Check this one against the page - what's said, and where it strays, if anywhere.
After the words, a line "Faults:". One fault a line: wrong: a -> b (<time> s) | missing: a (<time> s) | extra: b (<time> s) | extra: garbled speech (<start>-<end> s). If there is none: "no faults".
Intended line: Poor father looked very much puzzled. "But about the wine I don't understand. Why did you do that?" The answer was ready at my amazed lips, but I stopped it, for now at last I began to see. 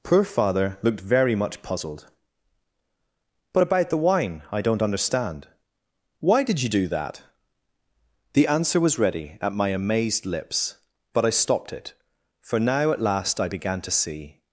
Poor father looked very much puzzled. "But about the wine I don't understand. Why did you do that?" The answer was ready at my amazed lips, but I stopped it, for now at last I began to see.
Faults:
no faults